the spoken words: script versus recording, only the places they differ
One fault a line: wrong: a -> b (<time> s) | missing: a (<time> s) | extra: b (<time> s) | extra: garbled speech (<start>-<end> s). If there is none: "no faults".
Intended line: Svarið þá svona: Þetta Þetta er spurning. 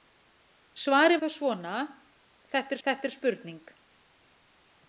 no faults